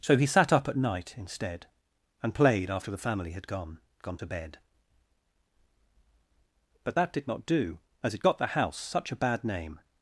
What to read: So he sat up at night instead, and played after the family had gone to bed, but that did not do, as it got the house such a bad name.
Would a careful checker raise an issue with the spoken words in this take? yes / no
yes